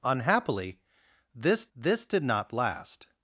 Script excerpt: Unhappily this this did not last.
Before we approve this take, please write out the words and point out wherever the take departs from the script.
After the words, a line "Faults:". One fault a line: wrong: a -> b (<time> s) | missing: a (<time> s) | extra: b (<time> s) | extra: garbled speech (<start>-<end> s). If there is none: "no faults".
Unhappily this this did not last.
Faults:
no faults